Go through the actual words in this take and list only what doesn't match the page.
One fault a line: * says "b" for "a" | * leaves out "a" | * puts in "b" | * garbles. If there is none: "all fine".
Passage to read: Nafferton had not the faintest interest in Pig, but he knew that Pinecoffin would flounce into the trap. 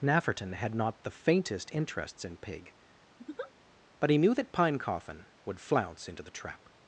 * says "interests" for "interest"